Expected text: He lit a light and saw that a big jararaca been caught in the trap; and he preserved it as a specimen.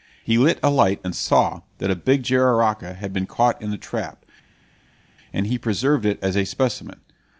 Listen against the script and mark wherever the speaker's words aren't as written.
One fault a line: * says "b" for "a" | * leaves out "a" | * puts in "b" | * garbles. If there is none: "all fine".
* puts in "had"